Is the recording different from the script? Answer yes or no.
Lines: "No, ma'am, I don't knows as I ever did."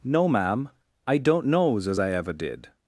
no